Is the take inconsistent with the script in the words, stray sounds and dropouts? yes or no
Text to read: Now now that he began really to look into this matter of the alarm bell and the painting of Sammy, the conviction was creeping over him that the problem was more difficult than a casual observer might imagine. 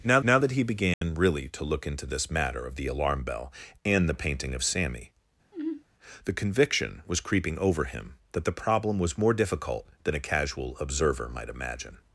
yes